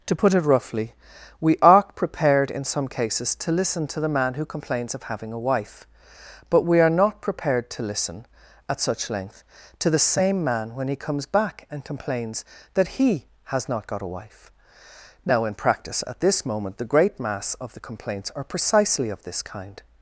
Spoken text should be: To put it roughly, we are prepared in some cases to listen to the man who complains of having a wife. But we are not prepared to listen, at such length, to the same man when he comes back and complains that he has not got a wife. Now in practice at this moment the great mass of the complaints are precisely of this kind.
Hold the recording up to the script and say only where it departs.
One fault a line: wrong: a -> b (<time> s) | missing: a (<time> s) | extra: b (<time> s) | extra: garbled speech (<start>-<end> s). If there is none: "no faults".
no faults